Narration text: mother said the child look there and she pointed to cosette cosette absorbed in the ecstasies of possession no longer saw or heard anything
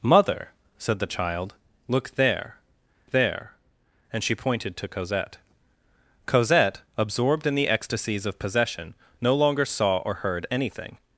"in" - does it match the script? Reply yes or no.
yes